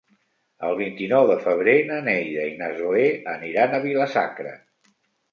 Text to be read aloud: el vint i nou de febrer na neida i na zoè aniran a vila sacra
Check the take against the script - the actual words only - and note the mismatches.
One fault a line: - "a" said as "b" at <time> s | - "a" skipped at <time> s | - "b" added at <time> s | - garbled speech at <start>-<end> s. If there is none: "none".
none